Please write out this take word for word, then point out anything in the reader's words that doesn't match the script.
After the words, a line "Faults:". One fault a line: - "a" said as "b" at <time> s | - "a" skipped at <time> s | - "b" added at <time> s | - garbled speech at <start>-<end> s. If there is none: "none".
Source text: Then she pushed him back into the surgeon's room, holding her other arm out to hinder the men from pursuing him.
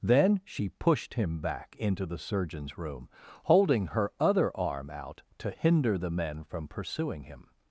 Then she pushed him back into the surgeon's room, holding her other arm out to hinder the men from pursuing him.
Faults:
none